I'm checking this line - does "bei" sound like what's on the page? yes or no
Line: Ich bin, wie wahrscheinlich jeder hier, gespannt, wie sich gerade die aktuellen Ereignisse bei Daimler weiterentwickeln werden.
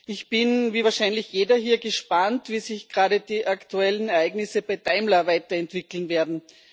yes